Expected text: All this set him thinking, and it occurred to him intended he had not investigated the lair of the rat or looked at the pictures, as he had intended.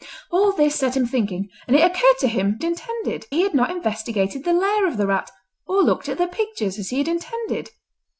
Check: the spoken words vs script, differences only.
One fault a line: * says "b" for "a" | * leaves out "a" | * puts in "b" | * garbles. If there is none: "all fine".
all fine